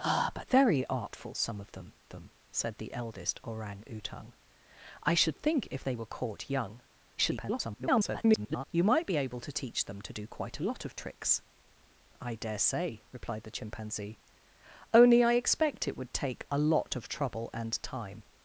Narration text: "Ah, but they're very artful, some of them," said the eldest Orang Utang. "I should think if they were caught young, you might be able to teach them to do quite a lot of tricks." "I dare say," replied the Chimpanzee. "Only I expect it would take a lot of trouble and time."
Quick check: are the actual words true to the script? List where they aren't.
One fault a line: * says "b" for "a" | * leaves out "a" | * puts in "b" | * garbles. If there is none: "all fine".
* leaves out "they're"
* puts in "them"
* garbles